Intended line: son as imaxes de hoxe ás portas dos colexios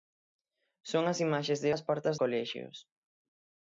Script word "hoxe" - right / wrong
wrong